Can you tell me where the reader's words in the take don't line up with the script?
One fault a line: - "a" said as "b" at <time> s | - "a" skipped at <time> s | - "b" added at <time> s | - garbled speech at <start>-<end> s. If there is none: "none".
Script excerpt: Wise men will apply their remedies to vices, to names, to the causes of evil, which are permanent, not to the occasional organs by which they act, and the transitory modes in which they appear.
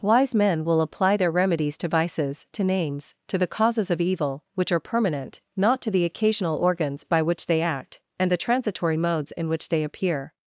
none